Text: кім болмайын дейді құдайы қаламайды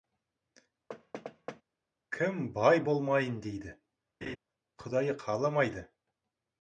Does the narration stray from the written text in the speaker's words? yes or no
yes